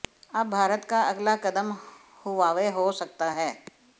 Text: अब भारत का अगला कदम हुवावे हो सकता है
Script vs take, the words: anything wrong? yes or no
no